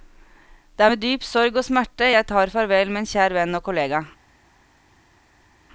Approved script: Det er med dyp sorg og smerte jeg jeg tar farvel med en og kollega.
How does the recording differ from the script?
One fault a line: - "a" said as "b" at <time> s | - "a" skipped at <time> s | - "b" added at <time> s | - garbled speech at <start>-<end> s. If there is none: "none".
- "jeg" skipped at 2.3 s
- "kjær venn" added at 3.1 s